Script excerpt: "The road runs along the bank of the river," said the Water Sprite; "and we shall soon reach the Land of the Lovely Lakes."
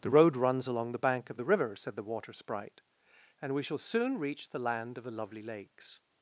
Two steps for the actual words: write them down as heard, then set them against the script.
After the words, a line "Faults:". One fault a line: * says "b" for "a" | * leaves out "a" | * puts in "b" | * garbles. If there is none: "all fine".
"The road runs along the bank of the river," said the Water Sprite; "and we shall soon reach the Land of the Lovely Lakes."
Faults:
all fine